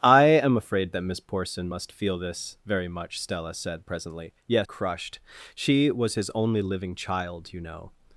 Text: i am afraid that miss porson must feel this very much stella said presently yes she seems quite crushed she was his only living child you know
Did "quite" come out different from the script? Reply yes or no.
yes